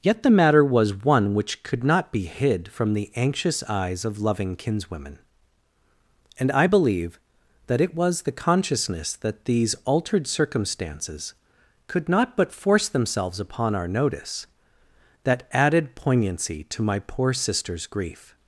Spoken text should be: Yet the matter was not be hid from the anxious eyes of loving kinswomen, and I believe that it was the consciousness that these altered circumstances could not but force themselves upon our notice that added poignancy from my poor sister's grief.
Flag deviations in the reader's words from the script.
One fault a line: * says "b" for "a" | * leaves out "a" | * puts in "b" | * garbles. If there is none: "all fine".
* puts in "one which could"
* says "to" for "from"